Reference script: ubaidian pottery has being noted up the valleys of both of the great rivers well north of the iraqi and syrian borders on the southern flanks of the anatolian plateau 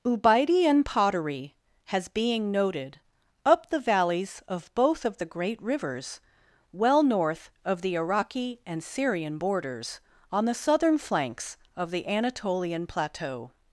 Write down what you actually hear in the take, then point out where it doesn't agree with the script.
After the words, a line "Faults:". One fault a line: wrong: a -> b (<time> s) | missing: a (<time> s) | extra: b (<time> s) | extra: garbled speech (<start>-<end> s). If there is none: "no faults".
ubaidian pottery has being noted up the valleys of both of the great rivers well north of the iraqi and syrian borders on the southern flanks of the anatolian plateau
Faults:
no faults